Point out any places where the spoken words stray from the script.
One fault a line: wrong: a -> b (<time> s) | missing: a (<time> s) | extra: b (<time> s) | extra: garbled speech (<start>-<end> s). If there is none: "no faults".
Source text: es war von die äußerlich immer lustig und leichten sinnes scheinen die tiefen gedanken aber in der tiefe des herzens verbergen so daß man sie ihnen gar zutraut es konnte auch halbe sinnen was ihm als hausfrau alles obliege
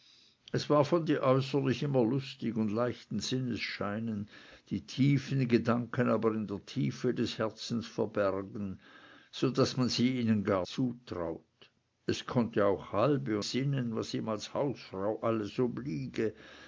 no faults